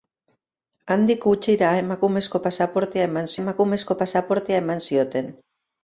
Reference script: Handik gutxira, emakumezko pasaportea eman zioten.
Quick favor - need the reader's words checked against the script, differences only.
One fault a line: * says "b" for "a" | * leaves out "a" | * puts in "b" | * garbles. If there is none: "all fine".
* puts in "emakumezko pasaportea eman"